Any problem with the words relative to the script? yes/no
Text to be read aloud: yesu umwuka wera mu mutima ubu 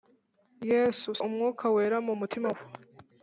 no